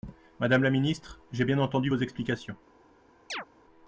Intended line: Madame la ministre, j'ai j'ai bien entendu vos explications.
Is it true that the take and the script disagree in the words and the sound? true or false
true